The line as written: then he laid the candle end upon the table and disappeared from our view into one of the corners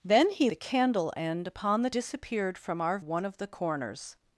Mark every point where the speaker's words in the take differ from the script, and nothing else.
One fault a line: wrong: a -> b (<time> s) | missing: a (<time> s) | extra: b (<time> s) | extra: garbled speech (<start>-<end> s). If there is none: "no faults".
missing: laid (0.5 s)
missing: table and (1.9 s)
missing: view into (3.0 s)